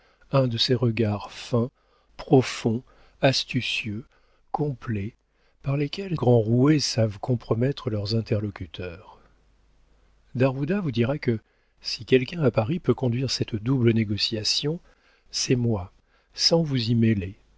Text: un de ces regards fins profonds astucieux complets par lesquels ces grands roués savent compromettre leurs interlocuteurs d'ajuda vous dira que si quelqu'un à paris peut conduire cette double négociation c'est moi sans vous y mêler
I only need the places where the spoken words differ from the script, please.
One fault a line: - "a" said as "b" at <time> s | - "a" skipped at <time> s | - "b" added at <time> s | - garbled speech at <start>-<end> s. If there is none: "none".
- "ces" skipped at 6.2 s